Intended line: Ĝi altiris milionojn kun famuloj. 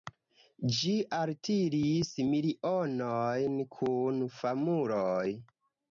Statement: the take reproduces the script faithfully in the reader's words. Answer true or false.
true